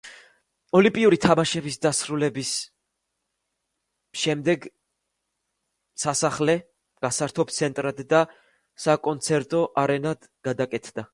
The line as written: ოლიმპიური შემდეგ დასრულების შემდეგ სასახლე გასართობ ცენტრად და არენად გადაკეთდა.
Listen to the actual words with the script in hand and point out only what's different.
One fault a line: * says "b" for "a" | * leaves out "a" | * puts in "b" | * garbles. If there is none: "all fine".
* says "თამაშების" for "შემდეგ"
* puts in "საკონცერტო"